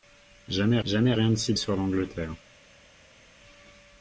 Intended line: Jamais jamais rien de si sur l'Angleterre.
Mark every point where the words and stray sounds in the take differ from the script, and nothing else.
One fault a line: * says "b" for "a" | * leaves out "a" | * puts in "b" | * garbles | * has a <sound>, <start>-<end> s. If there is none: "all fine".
all fine